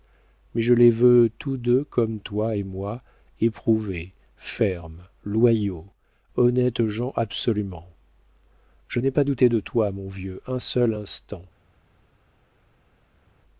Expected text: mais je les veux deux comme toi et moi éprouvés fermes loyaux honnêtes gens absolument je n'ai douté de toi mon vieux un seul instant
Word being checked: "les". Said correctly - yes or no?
yes